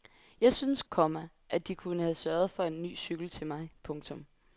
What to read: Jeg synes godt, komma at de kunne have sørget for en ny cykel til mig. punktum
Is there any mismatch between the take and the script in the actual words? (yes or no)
yes